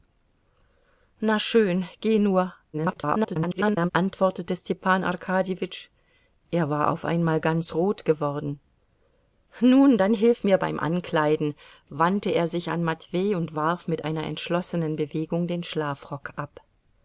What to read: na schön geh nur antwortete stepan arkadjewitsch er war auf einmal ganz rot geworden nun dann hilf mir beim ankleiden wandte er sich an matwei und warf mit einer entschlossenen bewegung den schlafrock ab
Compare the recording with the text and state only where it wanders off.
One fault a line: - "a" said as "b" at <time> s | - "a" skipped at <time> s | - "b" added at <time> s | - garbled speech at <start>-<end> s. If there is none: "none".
- garbled speech at 2.7-3.9 s